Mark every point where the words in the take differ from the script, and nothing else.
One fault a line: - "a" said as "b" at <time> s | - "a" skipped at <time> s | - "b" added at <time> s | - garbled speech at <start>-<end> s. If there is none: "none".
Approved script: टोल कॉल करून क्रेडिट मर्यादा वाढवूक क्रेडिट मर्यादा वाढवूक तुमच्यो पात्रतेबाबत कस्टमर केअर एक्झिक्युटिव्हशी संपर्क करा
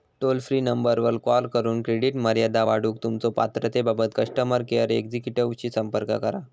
- "फ्री नंबरवर" added at 0.4 s
- "क्रेडिट मर्यादा वाढवूक" skipped at 3.0 s